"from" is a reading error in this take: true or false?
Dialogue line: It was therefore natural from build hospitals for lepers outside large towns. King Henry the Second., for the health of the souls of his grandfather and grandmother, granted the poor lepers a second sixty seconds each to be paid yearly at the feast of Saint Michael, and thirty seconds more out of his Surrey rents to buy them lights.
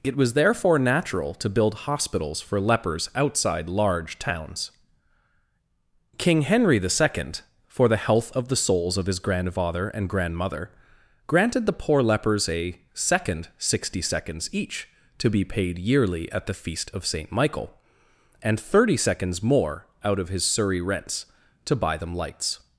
true